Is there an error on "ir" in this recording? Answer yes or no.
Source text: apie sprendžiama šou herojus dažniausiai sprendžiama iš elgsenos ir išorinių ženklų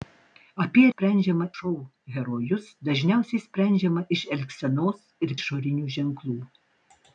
no